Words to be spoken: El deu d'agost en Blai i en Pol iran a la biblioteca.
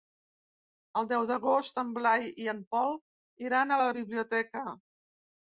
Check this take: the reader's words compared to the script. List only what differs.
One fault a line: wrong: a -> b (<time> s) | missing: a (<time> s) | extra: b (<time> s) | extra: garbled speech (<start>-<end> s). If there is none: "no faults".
no faults